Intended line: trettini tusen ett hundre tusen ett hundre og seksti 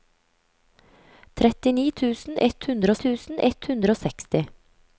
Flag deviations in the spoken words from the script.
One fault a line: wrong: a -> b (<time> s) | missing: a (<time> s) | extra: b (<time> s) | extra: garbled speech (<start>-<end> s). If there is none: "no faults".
no faults